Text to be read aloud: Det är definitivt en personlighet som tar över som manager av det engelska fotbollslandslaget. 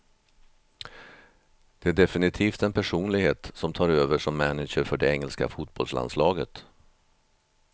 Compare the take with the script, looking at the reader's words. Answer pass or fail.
fail